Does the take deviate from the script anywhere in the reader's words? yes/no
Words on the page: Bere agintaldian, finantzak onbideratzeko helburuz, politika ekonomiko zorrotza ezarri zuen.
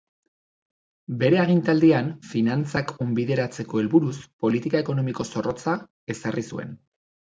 no